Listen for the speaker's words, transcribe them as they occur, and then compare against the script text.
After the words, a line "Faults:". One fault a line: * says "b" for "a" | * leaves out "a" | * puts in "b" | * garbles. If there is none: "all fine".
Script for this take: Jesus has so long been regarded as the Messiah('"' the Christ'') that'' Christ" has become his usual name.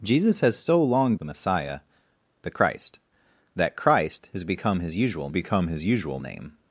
Jesus has so long the Messiah('"' the Christ'') that'' Christ" has become his usual become his usual name.
Faults:
* leaves out "been regarded as"
* puts in "become his usual"